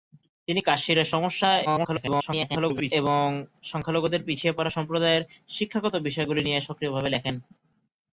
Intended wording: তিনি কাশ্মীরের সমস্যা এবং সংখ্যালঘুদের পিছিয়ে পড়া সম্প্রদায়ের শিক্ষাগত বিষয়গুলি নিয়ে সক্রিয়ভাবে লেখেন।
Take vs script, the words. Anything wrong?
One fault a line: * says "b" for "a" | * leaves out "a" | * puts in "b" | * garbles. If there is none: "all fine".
* garbles